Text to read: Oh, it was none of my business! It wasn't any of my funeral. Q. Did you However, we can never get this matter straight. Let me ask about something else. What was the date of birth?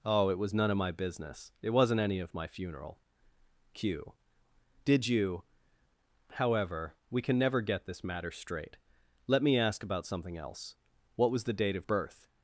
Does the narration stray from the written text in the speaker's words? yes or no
no